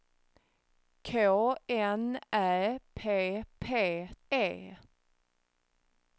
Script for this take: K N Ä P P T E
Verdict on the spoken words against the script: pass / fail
fail